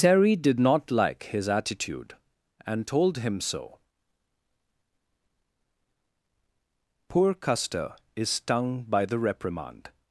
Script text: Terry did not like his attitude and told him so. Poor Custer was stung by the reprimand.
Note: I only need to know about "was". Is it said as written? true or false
false